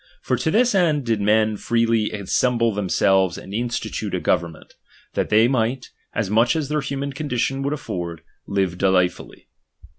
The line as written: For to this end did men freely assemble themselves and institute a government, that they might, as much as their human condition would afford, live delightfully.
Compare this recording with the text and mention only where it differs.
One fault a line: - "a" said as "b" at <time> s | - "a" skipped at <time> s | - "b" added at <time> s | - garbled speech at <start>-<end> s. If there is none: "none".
none